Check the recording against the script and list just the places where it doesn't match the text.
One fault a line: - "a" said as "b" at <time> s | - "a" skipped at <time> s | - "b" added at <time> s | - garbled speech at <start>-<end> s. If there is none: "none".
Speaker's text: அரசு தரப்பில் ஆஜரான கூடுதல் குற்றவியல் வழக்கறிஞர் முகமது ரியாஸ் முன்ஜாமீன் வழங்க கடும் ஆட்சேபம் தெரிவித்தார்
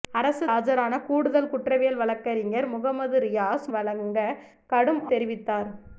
- "தரப்பில்" skipped at 0.5 s
- "முன்ஜாமீன்" skipped at 3.7 s
- "ஆட்சேபம்" skipped at 5.0 s